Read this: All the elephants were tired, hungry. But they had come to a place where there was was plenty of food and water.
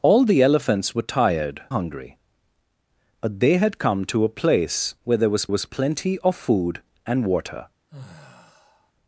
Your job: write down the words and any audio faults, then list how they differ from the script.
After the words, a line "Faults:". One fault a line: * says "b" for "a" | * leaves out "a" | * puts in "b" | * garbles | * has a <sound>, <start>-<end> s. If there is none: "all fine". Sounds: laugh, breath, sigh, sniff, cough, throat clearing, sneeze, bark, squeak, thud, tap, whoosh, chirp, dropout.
All the elephants were tired, hungry. But they had come to a place where there was was plenty of food and water.
Faults:
* has a sigh, 7.9-8.9 s